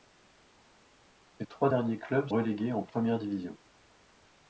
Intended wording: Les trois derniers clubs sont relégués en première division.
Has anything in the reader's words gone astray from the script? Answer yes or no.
yes